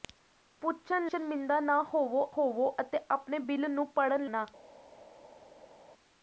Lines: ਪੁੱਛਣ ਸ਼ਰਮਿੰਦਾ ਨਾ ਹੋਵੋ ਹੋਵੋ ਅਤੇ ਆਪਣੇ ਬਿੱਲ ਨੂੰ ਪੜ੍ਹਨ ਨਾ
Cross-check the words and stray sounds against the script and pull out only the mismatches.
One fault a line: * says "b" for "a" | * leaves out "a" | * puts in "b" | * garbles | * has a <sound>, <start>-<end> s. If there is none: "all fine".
all fine